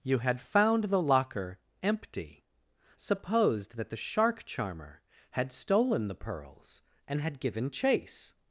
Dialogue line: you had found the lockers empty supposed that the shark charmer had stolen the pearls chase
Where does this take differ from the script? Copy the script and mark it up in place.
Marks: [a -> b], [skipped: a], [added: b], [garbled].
you had found the [lockers -> locker] empty supposed that the shark charmer had stolen the pearls [added: and had given] chase